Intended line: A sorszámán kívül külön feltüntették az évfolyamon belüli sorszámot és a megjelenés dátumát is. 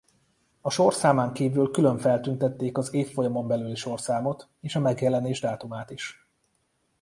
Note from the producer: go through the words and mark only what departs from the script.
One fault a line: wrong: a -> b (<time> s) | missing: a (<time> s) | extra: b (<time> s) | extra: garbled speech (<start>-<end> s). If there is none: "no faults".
no faults